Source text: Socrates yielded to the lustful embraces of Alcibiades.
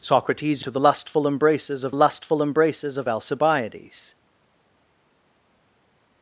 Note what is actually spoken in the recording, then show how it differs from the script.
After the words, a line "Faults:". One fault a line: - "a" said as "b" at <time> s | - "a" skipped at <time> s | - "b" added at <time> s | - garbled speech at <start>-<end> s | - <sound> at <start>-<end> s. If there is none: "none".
Socrates to the lustful embraces of lustful embraces of Alcibiades.
Faults:
- "yielded" skipped at 0.6 s
- "lustful embraces of" added at 1.9 s